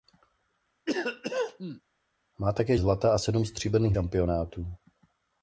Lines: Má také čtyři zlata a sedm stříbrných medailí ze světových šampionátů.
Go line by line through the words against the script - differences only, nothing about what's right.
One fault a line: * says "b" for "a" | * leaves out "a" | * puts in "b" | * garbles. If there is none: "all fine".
* leaves out "čtyři"
* leaves out "medailí ze světových"